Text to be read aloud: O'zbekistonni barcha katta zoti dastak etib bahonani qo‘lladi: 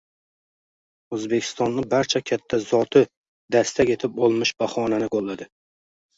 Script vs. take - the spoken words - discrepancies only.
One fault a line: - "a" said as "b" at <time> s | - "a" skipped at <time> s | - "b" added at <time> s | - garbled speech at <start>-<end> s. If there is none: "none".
- "olmish" added at 4.3 s